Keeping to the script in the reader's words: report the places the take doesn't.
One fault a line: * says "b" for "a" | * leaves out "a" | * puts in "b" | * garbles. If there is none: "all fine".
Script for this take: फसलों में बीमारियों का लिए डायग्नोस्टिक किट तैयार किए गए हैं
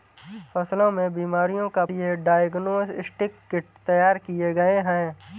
all fine